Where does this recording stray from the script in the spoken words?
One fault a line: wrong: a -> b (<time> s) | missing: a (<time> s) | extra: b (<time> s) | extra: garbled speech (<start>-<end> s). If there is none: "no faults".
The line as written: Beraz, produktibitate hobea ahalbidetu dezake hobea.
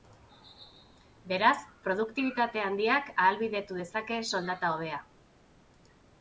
wrong: hobea -> handiak (2.7 s)
extra: soldata (4.3 s)